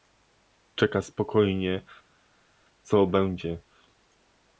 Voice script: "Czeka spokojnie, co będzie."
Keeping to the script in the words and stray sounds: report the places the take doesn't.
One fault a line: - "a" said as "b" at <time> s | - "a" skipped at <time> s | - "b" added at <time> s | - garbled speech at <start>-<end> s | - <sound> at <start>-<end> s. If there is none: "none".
none